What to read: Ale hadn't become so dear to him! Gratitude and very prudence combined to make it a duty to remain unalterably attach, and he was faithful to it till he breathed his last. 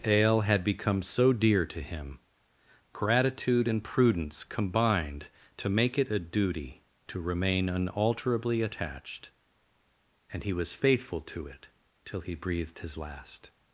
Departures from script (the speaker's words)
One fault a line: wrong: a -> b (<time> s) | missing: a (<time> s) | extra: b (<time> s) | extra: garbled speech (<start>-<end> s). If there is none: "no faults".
wrong: hadn't -> had (0.4 s)
missing: very (3.8 s)
wrong: attach -> attached (8.6 s)